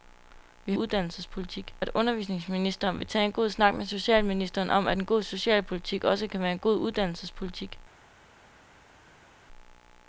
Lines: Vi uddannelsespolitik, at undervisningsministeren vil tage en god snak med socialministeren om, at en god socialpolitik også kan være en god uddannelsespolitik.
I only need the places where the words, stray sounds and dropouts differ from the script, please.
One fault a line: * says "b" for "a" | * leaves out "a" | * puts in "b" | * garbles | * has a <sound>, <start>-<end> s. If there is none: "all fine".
all fine